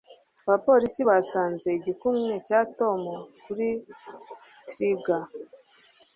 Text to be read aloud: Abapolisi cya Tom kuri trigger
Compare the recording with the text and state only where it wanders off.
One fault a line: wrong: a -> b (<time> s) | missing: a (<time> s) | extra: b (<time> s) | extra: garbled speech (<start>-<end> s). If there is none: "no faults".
extra: basanze igikumwe (1.1 s)